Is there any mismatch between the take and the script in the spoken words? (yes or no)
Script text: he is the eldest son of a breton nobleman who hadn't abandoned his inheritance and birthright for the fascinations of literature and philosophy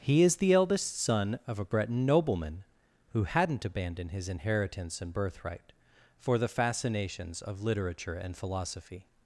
no